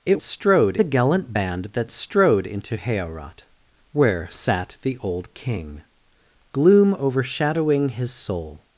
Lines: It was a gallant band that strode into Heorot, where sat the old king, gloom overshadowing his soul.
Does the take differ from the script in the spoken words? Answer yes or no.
yes